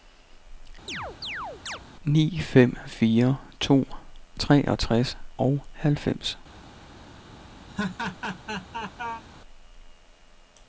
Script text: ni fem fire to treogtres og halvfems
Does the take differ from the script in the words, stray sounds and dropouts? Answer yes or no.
yes